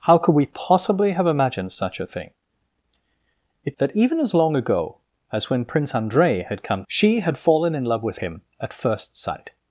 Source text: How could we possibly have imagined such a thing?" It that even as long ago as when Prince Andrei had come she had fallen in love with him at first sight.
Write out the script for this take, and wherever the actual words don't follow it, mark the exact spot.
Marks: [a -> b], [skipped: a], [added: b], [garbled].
How could we possibly have imagined such a thing?" It that even as long ago as when Prince Andrei had come she had fallen in love with him at first sight.